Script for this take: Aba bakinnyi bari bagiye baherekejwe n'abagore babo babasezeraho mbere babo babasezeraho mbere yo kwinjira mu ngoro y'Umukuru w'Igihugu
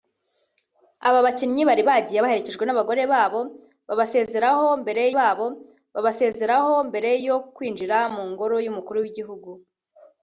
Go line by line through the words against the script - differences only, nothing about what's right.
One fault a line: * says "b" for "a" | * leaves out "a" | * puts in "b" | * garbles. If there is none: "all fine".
all fine